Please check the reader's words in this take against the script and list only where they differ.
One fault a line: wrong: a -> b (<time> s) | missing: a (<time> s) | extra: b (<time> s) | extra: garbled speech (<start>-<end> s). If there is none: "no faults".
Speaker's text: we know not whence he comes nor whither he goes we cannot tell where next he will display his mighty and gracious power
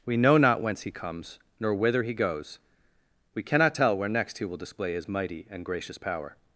no faults